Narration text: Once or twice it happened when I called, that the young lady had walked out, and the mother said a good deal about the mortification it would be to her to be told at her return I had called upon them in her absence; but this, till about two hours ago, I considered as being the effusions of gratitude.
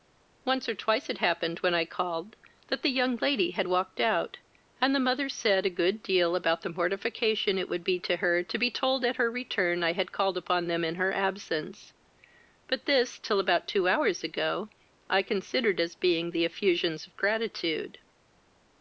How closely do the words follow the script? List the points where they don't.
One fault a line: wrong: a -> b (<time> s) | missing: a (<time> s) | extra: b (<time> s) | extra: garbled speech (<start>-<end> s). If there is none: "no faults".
no faults